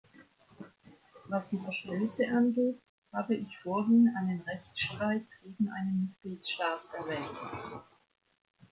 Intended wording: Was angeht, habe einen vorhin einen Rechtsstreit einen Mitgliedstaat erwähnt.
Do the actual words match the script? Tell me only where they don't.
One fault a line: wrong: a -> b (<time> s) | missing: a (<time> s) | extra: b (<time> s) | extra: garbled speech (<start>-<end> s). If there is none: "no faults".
extra: die Verstöße (1.5 s)
wrong: einen -> ich (3.3 s)
extra: gegen (5.4 s)